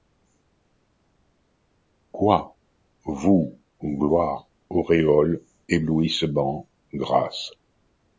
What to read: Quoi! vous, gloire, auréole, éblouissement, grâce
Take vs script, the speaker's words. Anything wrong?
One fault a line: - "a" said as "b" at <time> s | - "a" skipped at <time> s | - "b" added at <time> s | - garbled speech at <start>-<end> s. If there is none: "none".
none